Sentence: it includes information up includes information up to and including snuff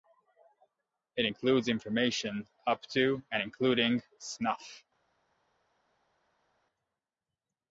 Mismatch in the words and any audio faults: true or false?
true